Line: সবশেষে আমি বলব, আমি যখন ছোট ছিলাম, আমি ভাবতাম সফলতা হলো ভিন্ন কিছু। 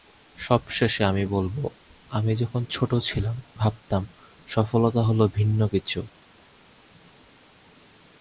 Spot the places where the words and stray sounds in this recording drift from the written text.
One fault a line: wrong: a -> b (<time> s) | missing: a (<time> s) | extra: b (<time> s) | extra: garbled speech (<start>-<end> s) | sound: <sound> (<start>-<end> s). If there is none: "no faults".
missing: আমি (3.4 s)